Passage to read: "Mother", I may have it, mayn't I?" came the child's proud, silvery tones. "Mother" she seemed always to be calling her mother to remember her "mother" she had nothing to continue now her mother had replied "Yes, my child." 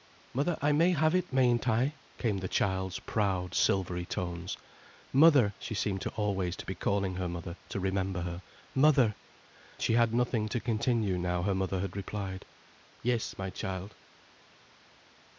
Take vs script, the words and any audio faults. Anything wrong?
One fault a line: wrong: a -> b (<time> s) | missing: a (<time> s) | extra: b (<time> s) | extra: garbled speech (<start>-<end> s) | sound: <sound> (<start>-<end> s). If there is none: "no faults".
no faults